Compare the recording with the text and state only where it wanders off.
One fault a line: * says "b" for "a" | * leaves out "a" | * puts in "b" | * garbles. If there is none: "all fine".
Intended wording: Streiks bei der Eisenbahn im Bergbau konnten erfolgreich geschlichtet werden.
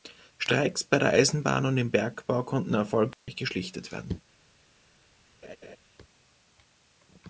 * puts in "und"